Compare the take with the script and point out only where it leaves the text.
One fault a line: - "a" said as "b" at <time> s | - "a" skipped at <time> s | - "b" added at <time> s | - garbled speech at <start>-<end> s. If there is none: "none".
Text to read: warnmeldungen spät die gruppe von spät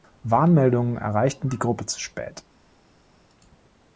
- "spät" said as "erreichten" at 1.0 s
- "von" said as "zu" at 1.9 s